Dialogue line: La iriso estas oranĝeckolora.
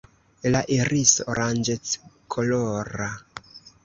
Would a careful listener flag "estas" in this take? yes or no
yes